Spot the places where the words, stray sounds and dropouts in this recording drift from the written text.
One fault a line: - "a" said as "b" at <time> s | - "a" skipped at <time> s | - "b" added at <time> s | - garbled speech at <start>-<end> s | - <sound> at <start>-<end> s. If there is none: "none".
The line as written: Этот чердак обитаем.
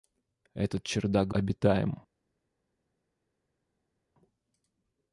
none